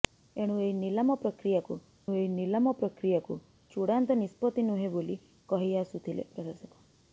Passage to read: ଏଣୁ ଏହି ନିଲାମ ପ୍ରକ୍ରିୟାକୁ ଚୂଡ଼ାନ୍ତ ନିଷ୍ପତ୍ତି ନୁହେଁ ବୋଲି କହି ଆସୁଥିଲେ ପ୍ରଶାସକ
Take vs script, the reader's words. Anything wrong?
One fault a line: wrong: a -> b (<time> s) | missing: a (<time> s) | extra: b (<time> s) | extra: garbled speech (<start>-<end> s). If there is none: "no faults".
extra: ଏହି ନିଲାମ ପ୍ରକ୍ରିୟାକୁ (2.1 s)